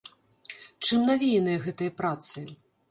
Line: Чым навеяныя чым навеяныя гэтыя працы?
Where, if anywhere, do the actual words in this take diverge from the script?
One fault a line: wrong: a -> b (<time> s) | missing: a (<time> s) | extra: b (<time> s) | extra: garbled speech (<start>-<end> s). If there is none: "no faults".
missing: чым навеяныя (1.6 s)